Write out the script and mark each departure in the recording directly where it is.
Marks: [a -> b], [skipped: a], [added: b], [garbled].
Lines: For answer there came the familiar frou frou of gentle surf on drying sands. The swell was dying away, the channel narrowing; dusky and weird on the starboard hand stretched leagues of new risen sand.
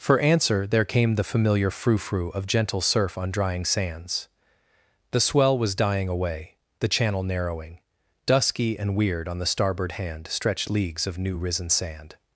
For answer there came the familiar frou frou of gentle surf on drying sands. The swell was dying away, the channel narrowing; dusky and weird on the starboard hand stretched leagues of new risen sand.